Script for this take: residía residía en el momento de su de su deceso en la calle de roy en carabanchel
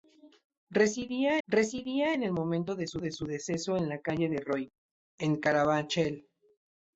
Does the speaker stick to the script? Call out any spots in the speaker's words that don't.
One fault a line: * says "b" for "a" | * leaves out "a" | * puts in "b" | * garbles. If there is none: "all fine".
all fine